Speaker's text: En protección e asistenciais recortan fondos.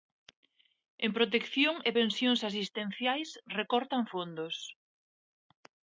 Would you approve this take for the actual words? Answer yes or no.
no